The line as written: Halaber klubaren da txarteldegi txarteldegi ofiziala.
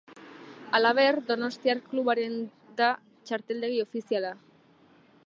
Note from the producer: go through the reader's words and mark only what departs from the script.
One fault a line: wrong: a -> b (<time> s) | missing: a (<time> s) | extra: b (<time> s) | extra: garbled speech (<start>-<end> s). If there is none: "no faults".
extra: donostiar (1.3 s)
missing: txarteldegi (3.8 s)